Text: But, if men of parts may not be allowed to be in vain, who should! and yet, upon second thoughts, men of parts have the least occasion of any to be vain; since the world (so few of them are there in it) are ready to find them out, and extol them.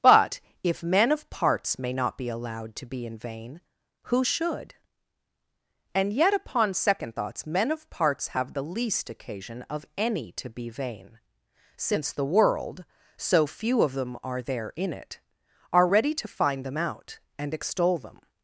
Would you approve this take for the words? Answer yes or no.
yes